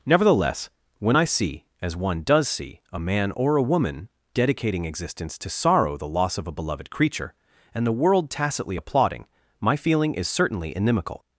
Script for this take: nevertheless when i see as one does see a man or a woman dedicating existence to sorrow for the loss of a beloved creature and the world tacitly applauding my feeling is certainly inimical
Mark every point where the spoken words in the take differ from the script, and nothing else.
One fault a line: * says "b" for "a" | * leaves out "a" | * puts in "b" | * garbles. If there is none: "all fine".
* leaves out "for"